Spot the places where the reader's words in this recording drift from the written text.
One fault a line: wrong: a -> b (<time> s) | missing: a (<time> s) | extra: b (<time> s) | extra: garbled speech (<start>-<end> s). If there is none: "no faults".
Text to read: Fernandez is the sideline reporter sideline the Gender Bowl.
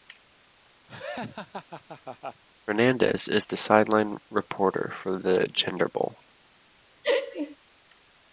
wrong: sideline -> for (4.9 s)